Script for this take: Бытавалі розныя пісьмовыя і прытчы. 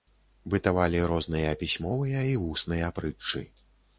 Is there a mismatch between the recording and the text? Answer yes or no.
yes